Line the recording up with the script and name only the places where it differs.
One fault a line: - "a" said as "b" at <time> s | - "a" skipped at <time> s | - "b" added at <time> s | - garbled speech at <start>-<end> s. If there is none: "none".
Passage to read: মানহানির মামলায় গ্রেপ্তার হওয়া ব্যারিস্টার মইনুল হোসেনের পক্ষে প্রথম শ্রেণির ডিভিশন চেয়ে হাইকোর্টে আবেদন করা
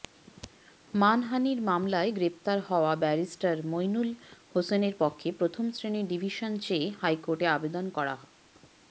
none